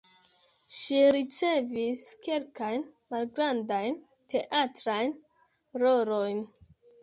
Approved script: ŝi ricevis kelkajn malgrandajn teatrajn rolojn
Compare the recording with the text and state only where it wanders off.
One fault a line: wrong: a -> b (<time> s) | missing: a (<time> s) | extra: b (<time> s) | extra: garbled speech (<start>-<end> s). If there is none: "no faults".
no faults